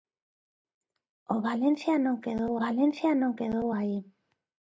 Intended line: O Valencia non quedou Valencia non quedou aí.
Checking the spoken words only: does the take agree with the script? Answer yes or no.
yes